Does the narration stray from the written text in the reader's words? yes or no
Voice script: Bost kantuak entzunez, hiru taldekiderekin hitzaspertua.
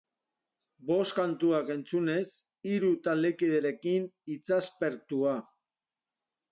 no